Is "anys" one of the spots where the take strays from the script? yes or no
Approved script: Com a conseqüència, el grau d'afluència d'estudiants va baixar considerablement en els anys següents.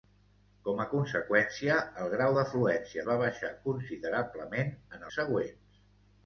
yes